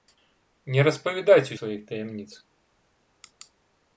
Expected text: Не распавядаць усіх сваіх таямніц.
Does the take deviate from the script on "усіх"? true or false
true